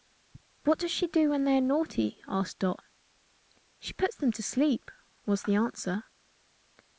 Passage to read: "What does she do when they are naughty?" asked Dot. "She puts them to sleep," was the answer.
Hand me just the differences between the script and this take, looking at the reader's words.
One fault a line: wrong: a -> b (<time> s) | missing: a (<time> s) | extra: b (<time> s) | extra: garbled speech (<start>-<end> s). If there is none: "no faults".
no faults